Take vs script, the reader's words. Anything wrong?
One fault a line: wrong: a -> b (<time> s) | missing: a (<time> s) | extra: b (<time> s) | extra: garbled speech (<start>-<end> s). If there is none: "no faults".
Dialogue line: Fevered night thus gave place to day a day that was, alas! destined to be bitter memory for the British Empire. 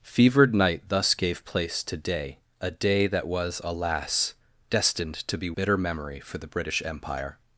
no faults